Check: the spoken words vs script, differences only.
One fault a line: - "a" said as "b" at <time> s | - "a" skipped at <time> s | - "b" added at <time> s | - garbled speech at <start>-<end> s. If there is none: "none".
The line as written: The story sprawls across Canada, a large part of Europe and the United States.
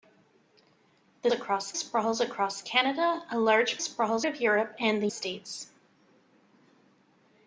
- "story" said as "across" at 1.3 s
- "part" said as "sprawls" at 3.8 s
- "United" skipped at 5.1 s